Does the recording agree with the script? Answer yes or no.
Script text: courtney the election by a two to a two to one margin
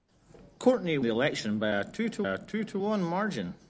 yes